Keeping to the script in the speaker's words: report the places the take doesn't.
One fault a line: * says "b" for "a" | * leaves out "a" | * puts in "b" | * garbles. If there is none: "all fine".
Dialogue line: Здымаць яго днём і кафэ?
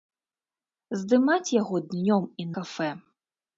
all fine